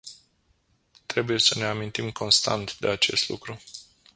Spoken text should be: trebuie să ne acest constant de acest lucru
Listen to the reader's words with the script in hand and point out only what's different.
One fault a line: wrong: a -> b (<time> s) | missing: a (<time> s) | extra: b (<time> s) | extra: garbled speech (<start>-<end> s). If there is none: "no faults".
wrong: acest -> amintim (1.6 s)